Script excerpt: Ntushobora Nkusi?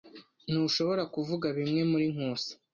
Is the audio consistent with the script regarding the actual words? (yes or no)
no